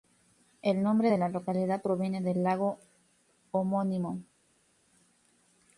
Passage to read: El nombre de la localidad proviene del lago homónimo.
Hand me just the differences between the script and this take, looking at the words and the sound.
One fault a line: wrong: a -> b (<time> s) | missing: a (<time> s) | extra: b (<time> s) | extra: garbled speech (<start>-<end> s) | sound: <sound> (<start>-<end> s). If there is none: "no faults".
no faults